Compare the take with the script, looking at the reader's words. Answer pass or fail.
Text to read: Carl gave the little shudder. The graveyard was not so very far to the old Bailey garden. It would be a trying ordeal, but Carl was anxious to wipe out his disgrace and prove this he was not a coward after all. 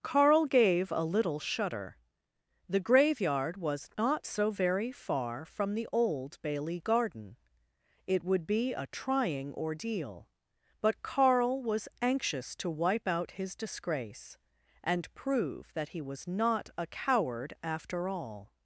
fail